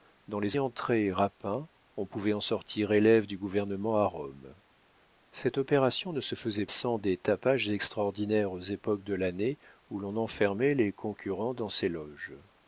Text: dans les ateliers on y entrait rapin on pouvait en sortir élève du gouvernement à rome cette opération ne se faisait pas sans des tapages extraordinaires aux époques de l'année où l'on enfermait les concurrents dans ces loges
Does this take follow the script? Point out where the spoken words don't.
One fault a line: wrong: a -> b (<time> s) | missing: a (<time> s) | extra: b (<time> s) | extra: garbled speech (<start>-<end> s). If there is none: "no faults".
missing: ateliers on y (0.6 s)
missing: pas (6.6 s)